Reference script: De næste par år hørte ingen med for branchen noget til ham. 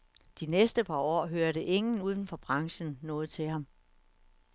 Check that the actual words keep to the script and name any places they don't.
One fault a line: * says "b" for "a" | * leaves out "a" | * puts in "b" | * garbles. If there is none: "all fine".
* says "uden" for "med"